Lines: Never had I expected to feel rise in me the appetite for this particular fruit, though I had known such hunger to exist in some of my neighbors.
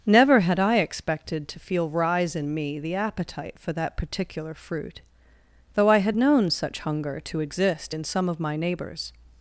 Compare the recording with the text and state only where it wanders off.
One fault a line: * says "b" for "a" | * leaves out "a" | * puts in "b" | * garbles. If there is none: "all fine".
* says "that" for "this"